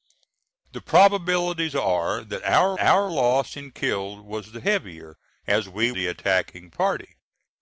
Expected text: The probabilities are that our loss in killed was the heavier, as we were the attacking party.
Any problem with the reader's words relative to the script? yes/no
yes